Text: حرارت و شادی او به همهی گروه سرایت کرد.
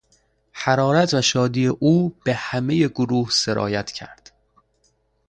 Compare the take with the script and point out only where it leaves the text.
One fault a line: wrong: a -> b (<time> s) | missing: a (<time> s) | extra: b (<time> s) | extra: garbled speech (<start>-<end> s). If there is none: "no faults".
no faults